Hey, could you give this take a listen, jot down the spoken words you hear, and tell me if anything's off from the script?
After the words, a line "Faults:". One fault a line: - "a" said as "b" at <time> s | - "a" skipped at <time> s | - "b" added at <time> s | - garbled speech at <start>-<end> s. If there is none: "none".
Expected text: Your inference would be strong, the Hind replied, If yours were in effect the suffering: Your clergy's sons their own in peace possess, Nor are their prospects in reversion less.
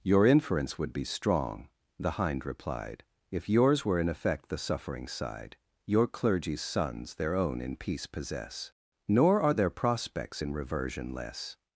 Your inference would be strong, the Hind replied, If yours were in effect the suffering side: Your clergy's sons their own in peace possess, Nor are their prospects in reversion less.
Faults:
- "side" added at 5.1 s